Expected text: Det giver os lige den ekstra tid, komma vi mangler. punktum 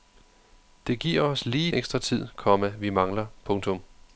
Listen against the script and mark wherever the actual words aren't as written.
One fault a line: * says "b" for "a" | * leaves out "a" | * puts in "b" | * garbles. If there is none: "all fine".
* leaves out "den"